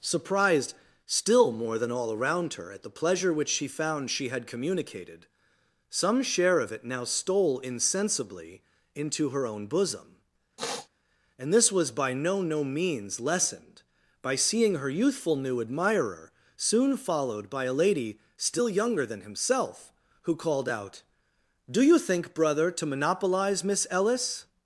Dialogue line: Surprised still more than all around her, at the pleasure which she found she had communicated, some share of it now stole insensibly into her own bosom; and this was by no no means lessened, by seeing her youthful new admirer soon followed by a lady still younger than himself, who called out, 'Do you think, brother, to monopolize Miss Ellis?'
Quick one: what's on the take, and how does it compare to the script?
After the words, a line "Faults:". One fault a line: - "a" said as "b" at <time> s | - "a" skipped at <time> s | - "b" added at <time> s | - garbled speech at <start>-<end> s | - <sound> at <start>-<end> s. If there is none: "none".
Surprised still more than all around her, at the pleasure which she found she had communicated, some share of it now stole insensibly into her own bosom; and this was by no no means lessened, by seeing her youthful new admirer soon followed by a lady still younger than himself, who called out, 'Do you think, brother, to monopolize Miss Ellis?'
Faults:
- sniff at 10.6-10.9 s